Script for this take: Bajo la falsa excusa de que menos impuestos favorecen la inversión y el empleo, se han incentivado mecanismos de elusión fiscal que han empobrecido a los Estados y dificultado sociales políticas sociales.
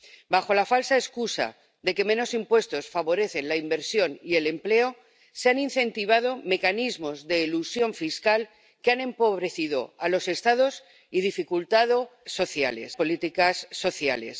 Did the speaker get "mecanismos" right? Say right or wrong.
right